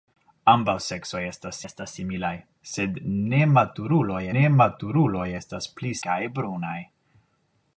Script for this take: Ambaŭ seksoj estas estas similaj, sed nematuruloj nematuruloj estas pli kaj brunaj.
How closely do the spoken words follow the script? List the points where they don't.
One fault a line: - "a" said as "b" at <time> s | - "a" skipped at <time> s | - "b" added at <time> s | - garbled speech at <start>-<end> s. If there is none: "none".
none